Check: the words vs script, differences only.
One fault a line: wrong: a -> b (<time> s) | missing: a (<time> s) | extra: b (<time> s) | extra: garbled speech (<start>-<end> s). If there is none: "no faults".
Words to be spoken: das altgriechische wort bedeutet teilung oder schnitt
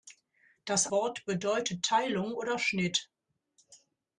missing: altgriechische (0.9 s)